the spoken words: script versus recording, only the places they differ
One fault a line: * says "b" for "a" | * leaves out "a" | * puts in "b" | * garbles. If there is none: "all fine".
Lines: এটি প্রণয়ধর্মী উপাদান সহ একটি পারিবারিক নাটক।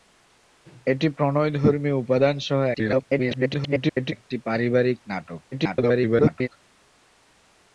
* garbles
* garbles